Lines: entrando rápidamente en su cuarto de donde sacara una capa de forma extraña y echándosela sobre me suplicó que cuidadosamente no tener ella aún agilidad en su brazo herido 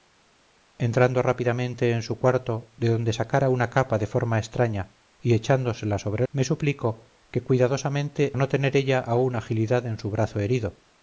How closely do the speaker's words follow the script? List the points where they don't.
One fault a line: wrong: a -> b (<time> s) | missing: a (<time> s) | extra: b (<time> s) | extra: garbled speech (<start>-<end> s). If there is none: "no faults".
no faults